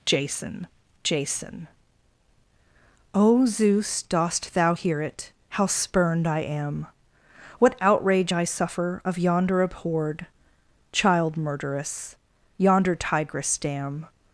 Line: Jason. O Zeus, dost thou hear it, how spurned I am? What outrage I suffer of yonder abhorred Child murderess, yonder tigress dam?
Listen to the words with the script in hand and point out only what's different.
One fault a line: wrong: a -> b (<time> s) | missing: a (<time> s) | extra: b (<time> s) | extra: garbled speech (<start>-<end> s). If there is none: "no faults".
extra: jason (1.0 s)